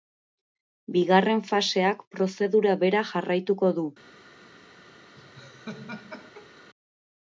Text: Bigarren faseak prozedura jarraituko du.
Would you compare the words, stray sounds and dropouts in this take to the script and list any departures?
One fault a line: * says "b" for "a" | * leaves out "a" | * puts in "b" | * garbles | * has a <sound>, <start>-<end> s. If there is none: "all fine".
* puts in "bera"
* has a laugh, 5.2-6.7 s